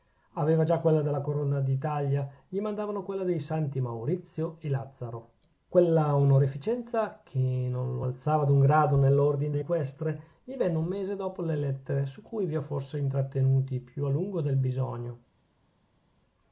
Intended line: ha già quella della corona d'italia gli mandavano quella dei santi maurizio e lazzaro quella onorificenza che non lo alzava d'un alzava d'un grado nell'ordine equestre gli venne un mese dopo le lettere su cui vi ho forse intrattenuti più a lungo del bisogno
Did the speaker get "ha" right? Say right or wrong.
wrong